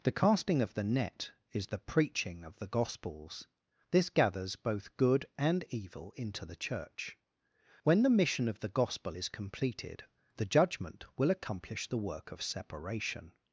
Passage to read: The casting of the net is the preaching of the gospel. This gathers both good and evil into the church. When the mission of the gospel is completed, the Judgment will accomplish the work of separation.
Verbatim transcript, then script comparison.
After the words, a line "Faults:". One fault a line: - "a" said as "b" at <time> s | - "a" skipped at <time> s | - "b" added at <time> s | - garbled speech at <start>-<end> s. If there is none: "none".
The casting of the net is the preaching of the gospels. This gathers both good and evil into the church. When the mission of the gospel is completed, the Judgment will accomplish the work of separation.
Faults:
- "gospel" said as "gospels" at 2.6 s